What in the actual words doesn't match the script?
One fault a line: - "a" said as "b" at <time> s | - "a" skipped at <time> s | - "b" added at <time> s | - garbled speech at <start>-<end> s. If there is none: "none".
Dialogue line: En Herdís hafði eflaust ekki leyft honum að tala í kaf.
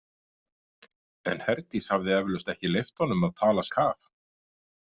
none